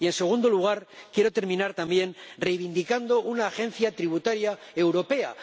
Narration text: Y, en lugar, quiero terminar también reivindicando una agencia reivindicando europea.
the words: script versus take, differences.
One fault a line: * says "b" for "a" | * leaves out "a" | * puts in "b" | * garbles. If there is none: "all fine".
* puts in "segundo"
* says "tributaria" for "reivindicando"